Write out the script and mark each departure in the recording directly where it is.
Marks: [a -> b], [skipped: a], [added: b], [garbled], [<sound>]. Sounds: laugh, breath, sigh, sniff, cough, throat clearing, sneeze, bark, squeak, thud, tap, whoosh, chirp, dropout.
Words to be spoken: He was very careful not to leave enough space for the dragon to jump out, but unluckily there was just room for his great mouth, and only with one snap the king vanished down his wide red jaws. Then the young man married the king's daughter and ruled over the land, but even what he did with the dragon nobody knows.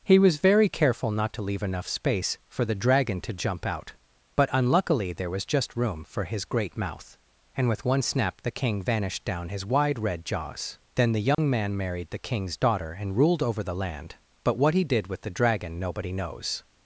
He was very careful not to leave enough space for the dragon to jump out, but unluckily there was just room for his great mouth, and [skipped: only] with one snap the king vanished down his wide red jaws. Then the young [dropout] man married the king's daughter and ruled over the land, but [skipped: even] what he did with the dragon nobody knows.